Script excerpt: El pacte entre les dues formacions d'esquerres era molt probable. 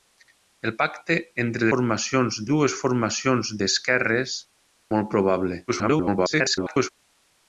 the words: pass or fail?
fail